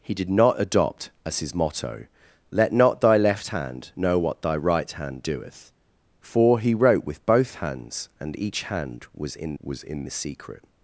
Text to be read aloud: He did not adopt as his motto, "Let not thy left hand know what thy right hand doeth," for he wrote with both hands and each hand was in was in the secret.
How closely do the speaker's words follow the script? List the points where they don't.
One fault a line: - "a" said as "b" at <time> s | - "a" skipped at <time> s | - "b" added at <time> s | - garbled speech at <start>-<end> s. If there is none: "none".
none